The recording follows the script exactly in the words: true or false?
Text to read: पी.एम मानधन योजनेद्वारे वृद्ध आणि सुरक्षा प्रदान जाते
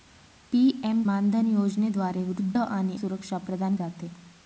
true